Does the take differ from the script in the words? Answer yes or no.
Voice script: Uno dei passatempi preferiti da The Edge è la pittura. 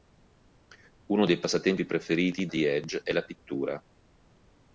yes